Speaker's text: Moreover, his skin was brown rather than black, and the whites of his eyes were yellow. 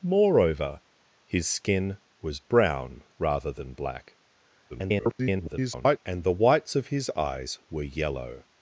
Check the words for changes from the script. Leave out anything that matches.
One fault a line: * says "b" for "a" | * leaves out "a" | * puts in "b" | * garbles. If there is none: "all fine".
* garbles